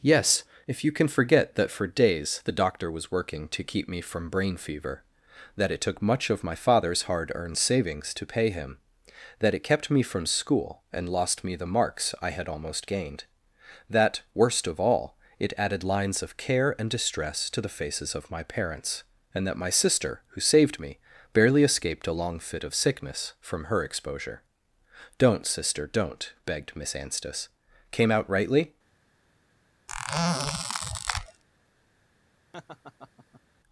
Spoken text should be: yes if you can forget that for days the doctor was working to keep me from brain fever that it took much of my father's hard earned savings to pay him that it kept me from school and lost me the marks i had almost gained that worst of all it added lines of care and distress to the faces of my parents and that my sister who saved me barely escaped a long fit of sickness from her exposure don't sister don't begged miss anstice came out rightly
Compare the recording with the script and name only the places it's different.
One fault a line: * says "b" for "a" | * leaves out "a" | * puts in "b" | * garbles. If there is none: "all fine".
all fine